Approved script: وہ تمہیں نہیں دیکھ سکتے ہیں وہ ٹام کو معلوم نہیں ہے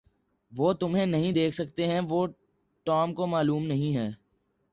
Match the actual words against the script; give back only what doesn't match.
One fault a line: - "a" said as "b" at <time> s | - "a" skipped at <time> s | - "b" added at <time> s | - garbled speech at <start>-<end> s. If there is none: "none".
none